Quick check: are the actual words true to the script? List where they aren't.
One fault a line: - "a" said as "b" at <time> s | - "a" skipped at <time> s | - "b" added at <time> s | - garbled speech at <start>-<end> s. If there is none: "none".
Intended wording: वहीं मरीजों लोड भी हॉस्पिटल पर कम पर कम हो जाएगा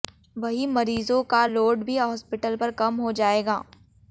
- "का" added at 1.2 s
- "पर कम" skipped at 3.0 s